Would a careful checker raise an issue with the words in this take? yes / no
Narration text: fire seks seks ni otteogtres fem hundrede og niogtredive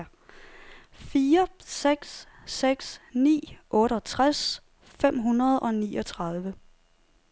no